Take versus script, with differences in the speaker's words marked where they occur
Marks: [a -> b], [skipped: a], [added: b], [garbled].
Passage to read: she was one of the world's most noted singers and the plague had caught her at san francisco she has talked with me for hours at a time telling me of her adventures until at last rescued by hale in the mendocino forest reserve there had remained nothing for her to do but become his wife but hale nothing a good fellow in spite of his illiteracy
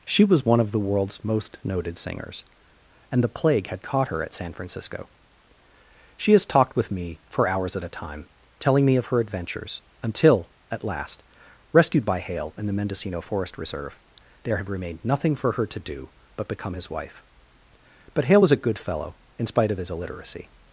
she was one of the world's most noted singers and the plague had caught her at san francisco she has talked with me for hours at a time telling me of her adventures until at last rescued by hale in the mendocino forest reserve there had remained nothing for her to do but become his wife but hale [nothing -> was] a good fellow in spite of his illiteracy